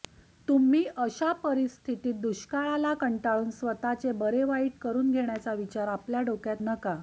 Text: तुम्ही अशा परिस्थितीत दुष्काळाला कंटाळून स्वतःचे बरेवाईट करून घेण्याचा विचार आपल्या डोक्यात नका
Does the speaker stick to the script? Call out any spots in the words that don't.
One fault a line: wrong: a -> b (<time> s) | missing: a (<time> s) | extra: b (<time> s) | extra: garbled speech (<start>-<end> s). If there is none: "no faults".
no faults